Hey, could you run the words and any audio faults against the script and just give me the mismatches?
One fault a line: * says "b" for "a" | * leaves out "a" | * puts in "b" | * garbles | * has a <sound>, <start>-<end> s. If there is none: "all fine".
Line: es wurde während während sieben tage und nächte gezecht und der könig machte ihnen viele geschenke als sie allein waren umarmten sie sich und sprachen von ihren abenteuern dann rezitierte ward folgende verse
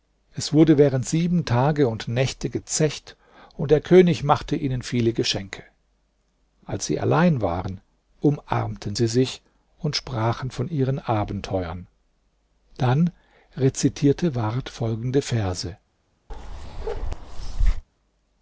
* leaves out "während"
* has a bark, 16.3-17.8 s